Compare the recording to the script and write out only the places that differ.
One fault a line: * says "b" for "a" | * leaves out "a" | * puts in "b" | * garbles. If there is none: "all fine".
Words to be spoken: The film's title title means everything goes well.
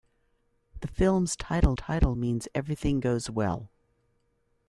all fine